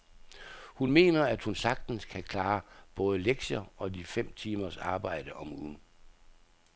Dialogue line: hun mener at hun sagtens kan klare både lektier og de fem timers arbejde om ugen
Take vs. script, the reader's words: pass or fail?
pass